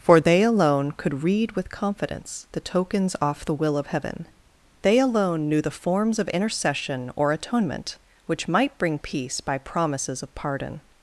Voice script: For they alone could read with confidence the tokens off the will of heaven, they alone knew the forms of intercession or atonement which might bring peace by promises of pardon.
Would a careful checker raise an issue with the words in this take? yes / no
no